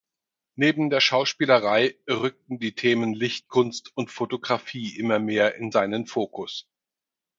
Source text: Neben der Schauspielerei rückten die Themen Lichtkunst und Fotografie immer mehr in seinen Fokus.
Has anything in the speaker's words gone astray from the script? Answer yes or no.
no